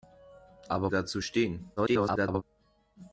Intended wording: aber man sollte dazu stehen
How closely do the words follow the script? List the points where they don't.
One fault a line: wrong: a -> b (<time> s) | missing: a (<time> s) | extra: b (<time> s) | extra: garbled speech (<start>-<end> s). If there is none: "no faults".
missing: man sollte (0.9 s)
extra: garbled speech (1.8-2.4 s)